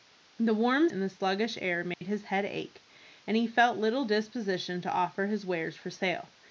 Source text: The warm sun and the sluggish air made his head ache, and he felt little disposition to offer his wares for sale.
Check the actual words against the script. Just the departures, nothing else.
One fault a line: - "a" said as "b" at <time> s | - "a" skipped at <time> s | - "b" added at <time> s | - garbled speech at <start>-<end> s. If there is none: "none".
- "sun" skipped at 0.9 s